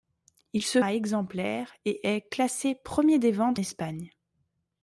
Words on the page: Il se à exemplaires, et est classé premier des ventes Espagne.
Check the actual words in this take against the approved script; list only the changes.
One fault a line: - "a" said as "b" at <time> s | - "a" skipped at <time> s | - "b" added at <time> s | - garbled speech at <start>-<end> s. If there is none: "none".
none